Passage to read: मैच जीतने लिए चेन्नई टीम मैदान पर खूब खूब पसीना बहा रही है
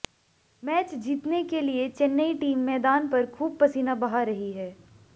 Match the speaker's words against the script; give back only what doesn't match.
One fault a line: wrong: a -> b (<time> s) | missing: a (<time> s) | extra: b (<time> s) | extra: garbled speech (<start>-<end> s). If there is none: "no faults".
extra: के (1.4 s)
missing: खूब (3.6 s)